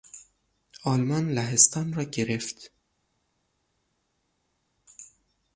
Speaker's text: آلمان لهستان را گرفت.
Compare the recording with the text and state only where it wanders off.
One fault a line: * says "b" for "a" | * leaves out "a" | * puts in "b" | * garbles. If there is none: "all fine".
all fine